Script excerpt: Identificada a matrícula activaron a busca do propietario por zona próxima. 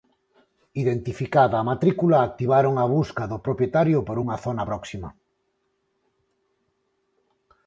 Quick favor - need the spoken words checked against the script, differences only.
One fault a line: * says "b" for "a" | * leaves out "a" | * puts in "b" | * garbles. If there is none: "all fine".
* puts in "unha"